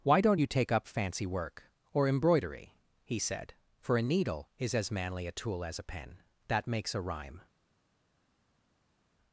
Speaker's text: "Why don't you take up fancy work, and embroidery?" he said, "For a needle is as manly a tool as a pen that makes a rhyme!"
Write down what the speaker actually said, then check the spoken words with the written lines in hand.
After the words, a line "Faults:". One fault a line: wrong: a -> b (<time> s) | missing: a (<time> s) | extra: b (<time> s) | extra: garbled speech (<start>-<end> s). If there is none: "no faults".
"Why don't you take up fancy work, or embroidery?" he said, "For a needle is as manly a tool as a pen that makes a rhyme!"
Faults:
wrong: and -> or (1.9 s)